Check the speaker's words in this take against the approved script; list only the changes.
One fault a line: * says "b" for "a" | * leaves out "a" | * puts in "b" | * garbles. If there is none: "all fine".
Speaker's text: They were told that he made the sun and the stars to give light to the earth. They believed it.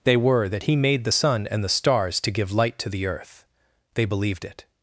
* leaves out "told"